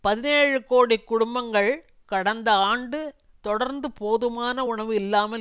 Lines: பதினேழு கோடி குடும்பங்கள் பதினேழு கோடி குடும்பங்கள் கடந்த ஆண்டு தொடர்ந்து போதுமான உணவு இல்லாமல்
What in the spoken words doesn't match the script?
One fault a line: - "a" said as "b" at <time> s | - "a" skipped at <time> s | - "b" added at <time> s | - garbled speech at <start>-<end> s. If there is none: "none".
- "பதினேழு கோடி குடும்பங்கள்" skipped at 1.7 s